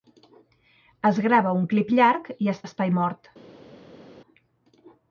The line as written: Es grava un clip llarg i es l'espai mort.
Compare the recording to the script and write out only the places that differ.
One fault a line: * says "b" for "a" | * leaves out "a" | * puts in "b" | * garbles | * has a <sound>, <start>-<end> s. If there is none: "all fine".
all fine